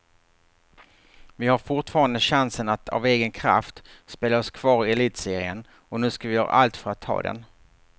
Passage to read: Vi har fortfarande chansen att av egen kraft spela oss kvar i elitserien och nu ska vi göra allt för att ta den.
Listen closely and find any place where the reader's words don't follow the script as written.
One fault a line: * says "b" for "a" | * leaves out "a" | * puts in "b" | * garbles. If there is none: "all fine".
all fine